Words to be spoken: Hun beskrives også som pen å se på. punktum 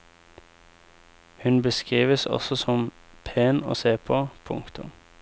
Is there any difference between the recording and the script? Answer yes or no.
no